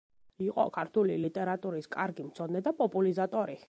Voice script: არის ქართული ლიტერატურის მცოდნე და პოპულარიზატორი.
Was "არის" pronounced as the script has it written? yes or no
no